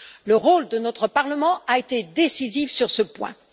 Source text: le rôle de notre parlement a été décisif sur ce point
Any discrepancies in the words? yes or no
no